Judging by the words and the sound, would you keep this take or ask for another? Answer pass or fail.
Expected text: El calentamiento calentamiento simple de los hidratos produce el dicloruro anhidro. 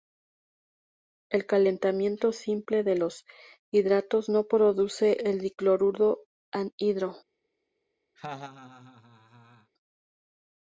fail